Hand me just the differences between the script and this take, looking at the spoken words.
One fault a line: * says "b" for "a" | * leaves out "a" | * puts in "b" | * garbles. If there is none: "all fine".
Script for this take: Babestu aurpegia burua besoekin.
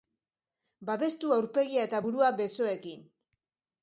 * puts in "eta"